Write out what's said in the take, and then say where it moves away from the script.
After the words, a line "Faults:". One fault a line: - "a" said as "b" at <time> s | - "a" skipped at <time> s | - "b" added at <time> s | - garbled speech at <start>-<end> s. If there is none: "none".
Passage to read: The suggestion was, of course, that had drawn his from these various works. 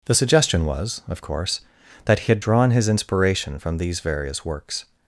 The suggestion was, of course, that he had drawn his inspiration from these various works.
Faults:
- "he" added at 2.2 s
- "inspiration" added at 2.9 s